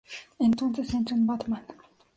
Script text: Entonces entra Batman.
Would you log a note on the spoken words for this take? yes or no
yes